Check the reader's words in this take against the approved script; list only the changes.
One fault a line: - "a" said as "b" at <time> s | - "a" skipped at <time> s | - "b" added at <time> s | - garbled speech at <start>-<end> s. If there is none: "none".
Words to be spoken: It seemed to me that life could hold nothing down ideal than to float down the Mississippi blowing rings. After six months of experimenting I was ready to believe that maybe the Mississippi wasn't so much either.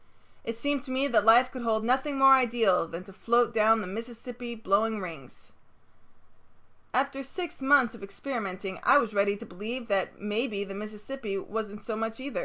- "down" said as "more" at 2.2 s